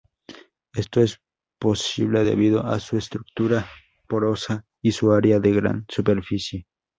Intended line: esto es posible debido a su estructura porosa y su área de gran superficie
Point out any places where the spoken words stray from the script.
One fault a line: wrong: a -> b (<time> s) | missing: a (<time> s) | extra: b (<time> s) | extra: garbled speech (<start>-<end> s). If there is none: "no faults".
no faults